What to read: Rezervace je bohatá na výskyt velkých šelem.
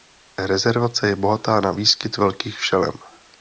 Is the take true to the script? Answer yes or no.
yes